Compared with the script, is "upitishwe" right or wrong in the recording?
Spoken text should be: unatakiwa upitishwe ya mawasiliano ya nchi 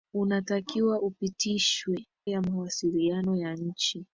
right